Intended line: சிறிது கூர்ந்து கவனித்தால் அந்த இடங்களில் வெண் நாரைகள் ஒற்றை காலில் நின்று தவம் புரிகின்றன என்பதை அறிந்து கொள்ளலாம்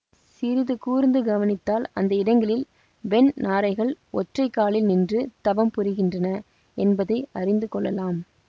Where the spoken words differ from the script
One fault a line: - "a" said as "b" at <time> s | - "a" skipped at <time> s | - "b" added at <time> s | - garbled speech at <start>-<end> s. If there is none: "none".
none